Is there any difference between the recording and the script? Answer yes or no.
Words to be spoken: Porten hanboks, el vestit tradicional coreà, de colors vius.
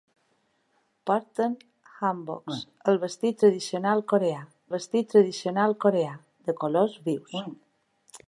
yes